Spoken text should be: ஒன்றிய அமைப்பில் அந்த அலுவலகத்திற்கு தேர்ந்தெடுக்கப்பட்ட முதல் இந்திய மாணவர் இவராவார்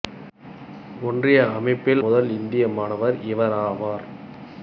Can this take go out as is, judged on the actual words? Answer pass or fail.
fail